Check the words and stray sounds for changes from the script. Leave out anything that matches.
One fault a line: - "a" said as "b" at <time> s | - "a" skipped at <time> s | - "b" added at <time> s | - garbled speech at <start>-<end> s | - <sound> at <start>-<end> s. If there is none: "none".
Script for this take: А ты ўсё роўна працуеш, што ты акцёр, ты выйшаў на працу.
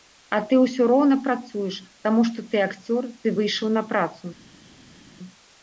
- "таму" added at 2.1 s